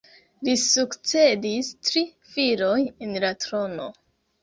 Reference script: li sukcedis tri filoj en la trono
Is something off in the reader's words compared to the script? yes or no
no